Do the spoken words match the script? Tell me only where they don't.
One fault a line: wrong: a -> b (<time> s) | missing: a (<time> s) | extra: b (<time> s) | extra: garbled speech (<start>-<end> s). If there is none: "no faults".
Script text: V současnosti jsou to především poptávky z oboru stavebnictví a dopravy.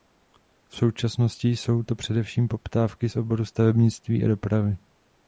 no faults